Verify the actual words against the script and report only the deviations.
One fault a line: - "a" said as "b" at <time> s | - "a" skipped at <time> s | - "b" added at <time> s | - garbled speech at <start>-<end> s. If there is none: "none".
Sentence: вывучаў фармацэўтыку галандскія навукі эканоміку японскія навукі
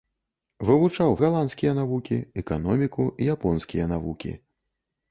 - "фармацэўтыку" skipped at 1.1 s